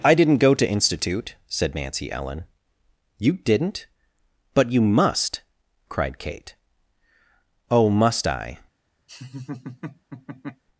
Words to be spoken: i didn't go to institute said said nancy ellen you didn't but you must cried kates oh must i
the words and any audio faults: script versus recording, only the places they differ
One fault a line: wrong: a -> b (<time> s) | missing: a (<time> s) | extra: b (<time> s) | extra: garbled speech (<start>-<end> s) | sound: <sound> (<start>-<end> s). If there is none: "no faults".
missing: said (1.8 s)
wrong: kates -> kate (6.2 s)
sound: laugh (9.1-10.6 s)